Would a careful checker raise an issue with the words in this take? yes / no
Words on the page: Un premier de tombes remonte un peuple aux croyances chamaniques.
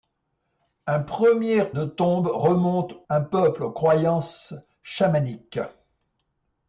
no